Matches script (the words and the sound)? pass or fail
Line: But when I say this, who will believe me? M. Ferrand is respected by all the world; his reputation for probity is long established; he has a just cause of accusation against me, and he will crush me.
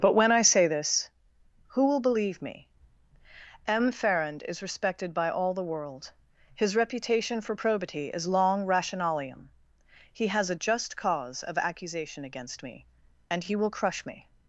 fail